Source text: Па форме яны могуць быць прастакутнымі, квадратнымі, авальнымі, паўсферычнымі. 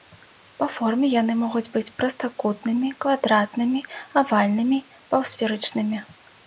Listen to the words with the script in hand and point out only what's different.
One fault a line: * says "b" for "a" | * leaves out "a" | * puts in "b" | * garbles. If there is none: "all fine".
all fine